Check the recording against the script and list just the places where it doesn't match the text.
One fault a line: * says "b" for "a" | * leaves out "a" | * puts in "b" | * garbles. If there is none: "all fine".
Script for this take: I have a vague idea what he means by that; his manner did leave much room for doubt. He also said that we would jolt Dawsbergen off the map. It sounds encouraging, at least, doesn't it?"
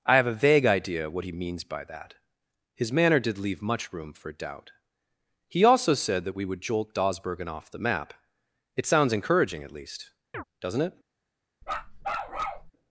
all fine